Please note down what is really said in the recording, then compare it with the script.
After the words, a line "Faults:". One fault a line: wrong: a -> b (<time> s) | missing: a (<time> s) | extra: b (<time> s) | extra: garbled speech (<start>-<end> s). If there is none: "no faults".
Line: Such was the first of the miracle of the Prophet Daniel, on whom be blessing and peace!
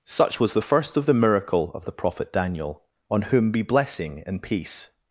Such was the first of the miracle of the Prophet Daniel, on whom be blessing and peace!
Faults:
no faults